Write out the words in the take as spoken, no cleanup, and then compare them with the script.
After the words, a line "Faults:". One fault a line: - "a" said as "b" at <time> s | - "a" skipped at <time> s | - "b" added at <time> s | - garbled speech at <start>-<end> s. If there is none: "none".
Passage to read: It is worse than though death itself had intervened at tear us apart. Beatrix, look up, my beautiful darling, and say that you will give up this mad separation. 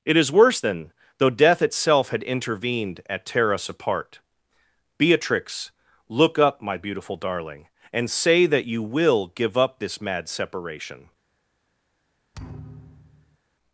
It is worse than though death itself had intervened at tear us apart. Beatrix, look up, my beautiful darling, and say that you will give up this mad separation.
Faults:
none